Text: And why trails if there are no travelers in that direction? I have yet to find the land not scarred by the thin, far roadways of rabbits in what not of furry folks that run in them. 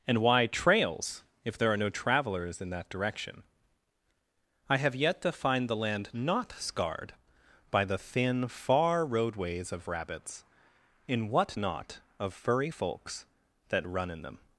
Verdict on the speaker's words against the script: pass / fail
pass